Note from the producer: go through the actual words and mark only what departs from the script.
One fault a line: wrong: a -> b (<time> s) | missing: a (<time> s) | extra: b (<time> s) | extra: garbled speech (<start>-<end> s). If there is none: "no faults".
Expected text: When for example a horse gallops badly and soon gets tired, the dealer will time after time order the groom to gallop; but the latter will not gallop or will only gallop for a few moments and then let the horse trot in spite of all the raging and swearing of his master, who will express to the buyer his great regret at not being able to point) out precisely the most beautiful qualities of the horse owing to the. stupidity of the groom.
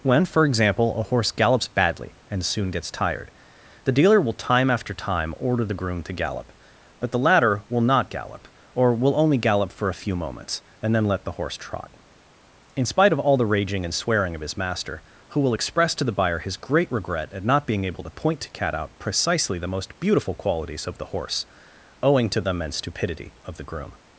extra: to cat (18.4 s)
extra: immense (22.5 s)